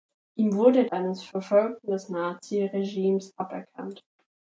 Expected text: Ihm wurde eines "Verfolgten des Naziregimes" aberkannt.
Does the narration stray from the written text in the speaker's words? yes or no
no